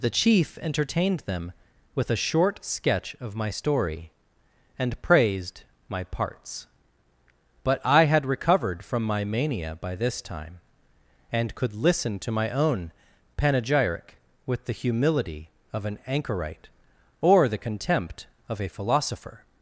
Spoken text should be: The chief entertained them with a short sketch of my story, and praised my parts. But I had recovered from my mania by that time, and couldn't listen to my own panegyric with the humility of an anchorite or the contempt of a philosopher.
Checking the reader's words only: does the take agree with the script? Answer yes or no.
no